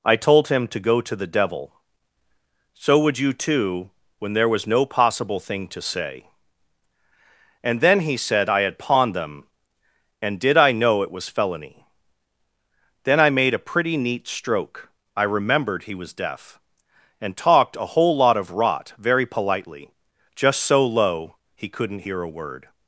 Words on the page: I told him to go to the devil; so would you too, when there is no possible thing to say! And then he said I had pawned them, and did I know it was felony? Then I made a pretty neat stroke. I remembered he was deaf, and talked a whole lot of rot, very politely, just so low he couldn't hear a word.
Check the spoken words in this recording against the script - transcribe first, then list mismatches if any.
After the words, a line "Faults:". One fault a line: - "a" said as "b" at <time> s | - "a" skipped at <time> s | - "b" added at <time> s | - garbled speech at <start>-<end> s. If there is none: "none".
I told him to go to the devil; so would you too, when there was no possible thing to say! And then he said I had pawned them, and did I know it was felony? Then I made a pretty neat stroke. I remembered he was deaf, and talked a whole lot of rot, very politely, just so low he couldn't hear a word.
Faults:
- "is" said as "was" at 4.5 s